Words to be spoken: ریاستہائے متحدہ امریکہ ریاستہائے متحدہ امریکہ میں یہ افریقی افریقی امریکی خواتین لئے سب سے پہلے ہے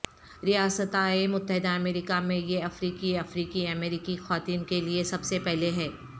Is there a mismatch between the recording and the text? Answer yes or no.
yes